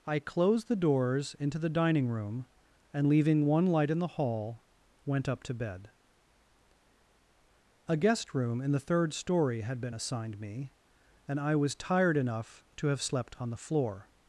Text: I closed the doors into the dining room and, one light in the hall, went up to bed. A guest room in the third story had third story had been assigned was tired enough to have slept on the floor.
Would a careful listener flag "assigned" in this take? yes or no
yes